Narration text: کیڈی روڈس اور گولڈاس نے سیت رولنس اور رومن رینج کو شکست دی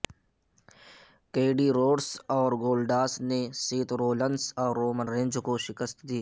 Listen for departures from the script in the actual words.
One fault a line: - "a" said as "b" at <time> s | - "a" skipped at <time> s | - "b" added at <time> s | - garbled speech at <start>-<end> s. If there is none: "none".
none